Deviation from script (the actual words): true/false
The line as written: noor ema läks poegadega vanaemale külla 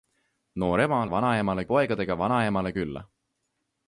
true